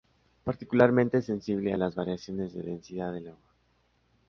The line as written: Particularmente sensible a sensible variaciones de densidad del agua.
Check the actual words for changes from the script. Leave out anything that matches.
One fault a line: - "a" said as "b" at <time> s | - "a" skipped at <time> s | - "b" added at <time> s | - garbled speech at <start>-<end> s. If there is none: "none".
- "sensible" said as "las" at 1.8 s